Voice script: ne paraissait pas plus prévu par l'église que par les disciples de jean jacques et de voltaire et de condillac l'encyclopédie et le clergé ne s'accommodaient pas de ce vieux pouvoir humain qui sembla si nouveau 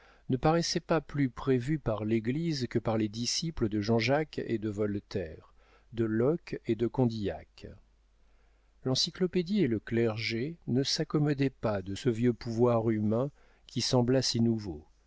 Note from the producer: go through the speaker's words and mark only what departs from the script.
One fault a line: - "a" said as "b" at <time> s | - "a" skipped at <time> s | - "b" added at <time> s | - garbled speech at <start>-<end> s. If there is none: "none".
- "de locke" added at 5.9 s